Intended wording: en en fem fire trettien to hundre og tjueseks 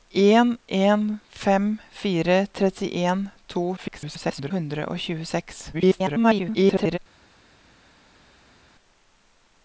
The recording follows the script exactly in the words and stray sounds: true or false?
false